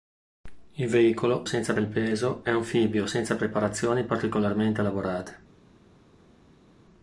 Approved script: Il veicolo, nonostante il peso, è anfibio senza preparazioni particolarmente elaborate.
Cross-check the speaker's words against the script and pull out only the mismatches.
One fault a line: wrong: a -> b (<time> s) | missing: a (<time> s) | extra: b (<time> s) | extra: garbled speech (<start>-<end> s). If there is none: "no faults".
wrong: nonostante -> senza (1.4 s)